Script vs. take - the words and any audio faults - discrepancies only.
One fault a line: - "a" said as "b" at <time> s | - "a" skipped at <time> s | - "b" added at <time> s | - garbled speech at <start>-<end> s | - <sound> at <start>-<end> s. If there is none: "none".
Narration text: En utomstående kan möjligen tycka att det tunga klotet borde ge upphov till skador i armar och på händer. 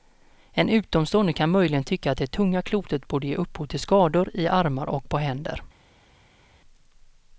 none